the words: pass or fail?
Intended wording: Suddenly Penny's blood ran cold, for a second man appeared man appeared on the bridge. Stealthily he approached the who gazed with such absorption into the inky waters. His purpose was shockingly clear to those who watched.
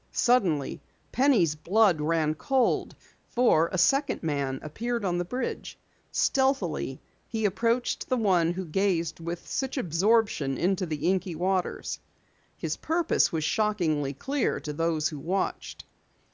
fail